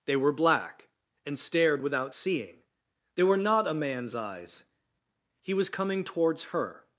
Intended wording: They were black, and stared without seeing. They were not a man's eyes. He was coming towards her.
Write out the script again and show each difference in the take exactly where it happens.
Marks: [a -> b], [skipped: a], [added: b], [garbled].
They were black, and stared without seeing. They were not a man's eyes. He was coming towards her.